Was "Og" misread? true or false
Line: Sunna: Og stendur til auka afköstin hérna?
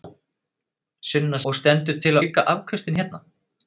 false